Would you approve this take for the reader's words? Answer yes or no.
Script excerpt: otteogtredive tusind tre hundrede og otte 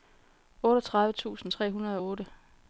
yes